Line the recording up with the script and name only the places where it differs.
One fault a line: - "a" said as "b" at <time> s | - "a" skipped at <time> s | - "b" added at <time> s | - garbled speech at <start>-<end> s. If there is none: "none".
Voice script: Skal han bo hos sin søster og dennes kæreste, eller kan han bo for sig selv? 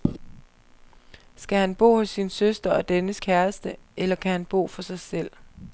none